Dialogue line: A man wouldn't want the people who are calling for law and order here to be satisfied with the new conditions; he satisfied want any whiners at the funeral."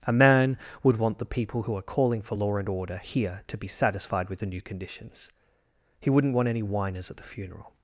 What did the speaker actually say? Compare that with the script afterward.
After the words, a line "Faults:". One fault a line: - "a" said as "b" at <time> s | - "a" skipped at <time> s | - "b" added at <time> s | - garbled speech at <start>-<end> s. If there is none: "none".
A man would want the people who are calling for law and order here to be satisfied with the new conditions; he wouldn't want any whiners at the funeral."
Faults:
- "wouldn't" said as "would" at 0.8 s
- "satisfied" said as "wouldn't" at 6.1 s